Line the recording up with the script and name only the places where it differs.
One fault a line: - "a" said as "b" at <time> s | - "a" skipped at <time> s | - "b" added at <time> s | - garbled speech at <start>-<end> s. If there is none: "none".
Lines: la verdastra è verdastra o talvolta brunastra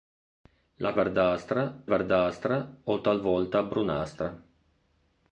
none